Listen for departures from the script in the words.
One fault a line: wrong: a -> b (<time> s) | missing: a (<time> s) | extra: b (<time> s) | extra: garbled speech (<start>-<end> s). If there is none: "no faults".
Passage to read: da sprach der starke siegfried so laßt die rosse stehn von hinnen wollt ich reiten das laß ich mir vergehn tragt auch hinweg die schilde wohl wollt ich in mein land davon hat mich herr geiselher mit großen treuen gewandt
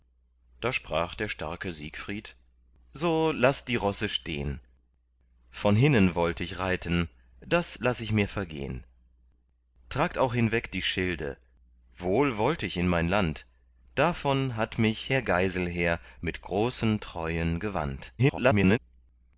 extra: garbled speech (18.2-18.8 s)